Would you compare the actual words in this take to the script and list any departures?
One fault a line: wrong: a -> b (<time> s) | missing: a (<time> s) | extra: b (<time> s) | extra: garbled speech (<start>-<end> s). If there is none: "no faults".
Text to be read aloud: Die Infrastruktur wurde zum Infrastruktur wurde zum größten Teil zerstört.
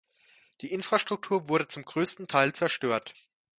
missing: Infrastruktur wurde zum (1.9 s)